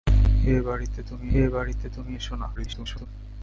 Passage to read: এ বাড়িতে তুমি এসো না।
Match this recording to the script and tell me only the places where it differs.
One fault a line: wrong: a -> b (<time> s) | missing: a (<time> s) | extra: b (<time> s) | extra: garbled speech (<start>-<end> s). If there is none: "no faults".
extra: এ বাড়িতে তুমি (1.3 s)
extra: garbled speech (2.5-3.1 s)